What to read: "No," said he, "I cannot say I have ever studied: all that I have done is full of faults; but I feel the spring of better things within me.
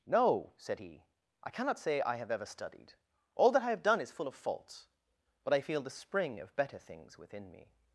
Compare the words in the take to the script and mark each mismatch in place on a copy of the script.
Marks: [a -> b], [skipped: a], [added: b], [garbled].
"No," said he, "I cannot say I have ever studied: all that I have done is full of faults; but I feel the spring of better things within me.